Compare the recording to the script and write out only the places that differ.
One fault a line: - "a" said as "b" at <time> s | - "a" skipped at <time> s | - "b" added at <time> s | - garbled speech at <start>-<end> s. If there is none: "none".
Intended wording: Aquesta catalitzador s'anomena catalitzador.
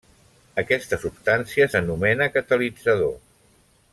- "catalitzador" said as "substància" at 1.0 s